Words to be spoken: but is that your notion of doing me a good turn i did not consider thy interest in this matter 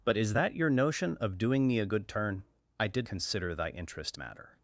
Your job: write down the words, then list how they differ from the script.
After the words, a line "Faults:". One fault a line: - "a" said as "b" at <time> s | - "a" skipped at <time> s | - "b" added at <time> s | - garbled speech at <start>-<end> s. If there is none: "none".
but is that your notion of doing me a good turn i did consider thy interest matter
Faults:
- "not" skipped at 3.1 s
- "in this" skipped at 4.2 s